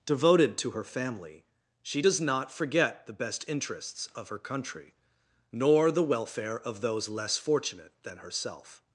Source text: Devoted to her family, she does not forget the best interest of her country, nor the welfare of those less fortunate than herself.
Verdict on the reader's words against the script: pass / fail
fail